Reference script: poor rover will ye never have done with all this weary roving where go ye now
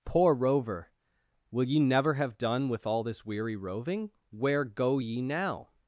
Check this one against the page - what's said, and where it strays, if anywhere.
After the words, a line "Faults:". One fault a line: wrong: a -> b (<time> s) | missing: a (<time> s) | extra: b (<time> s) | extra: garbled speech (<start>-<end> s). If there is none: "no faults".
poor rover will ye never have done with all this weary roving where go ye now
Faults:
no faults